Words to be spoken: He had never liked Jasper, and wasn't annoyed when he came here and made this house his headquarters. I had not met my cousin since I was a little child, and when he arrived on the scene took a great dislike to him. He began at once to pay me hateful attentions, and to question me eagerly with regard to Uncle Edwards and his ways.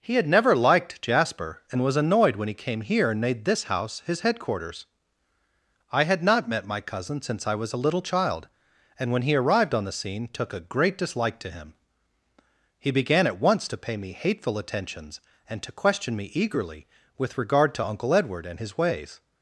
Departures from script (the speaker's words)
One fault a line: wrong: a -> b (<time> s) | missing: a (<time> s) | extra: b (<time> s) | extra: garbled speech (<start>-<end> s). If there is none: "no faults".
wrong: wasn't -> was (1.8 s)
wrong: Edwards -> Edward (18.1 s)